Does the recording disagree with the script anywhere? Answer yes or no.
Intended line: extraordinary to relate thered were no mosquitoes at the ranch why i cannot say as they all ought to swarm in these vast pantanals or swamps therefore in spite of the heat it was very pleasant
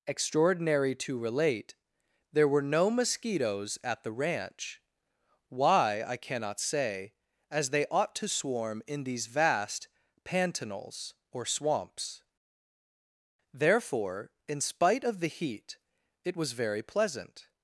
yes